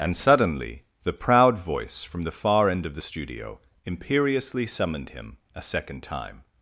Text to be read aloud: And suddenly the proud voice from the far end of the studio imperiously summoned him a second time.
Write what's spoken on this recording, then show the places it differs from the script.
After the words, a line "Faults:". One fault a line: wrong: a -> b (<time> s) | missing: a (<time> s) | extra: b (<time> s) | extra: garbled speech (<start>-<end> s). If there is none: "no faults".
And suddenly the proud voice from the far end of the studio imperiously summoned him a second time.
Faults:
no faults